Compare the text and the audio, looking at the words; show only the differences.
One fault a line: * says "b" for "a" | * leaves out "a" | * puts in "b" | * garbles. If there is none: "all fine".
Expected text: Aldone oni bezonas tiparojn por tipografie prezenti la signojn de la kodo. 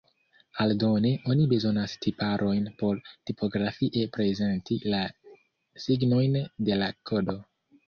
all fine